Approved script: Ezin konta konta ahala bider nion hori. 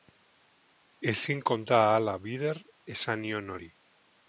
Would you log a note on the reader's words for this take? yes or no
yes